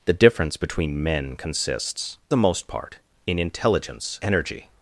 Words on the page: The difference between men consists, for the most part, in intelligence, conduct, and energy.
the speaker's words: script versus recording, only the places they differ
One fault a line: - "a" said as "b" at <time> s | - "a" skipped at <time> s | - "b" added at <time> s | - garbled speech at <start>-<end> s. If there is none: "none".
- "for" skipped at 2.2 s
- "conduct and" skipped at 4.2 s